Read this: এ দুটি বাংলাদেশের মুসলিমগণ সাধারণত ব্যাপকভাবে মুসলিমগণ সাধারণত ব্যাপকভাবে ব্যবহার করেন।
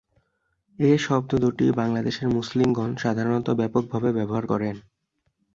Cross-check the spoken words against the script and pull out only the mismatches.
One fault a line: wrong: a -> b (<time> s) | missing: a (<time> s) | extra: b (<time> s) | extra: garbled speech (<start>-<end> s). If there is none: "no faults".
extra: শব্দ (1.0 s)
missing: মুসলিমগণ সাধারণত ব্যাপকভাবে (4.1 s)